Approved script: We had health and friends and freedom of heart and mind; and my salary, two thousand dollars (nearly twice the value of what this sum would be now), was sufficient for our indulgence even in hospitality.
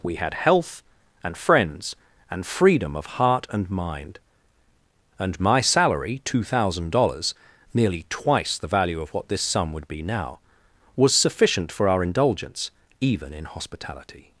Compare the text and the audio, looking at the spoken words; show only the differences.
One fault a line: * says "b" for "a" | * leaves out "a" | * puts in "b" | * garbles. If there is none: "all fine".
all fine